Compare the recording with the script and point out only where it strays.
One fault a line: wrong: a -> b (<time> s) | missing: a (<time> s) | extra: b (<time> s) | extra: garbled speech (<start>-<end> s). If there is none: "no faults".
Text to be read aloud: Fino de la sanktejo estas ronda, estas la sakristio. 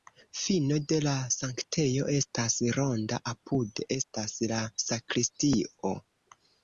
extra: apude (3.3 s)